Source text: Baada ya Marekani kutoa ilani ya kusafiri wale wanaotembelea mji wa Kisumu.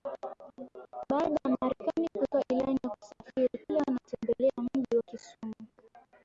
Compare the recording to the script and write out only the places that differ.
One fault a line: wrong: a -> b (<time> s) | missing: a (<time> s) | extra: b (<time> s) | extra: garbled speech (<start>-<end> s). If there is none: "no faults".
no faults